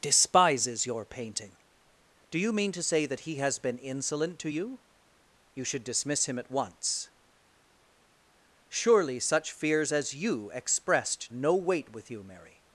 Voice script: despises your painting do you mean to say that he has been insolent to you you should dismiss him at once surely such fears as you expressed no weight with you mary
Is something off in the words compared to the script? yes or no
no